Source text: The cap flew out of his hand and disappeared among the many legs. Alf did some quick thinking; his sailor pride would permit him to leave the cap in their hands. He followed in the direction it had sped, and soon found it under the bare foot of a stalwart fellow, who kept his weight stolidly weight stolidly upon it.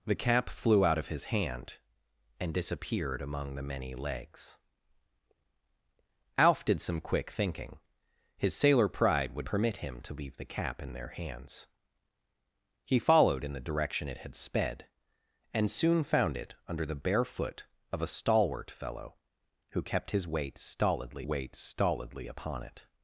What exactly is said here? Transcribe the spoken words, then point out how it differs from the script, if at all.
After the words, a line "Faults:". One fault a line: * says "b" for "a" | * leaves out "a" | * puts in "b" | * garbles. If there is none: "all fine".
The cap flew out of his hand and disappeared among the many legs. Alf did some quick thinking; his sailor pride would permit him to leave the cap in their hands. He followed in the direction it had sped, and soon found it under the bare foot of a stalwart fellow, who kept his weight stolidly weight stolidly upon it.
Faults:
all fine